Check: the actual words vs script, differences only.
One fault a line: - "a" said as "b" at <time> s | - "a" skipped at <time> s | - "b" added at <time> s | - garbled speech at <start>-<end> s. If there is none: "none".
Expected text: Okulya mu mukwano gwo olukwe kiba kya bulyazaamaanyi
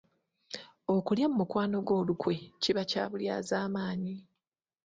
none